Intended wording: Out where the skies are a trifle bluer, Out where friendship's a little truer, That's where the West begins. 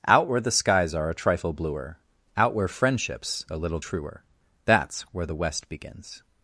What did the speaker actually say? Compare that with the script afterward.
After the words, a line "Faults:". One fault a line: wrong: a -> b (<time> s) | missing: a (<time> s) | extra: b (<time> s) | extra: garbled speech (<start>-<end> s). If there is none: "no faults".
Out where the skies are a trifle bluer, Out where friendship's a little truer, That's where the West begins.
Faults:
no faults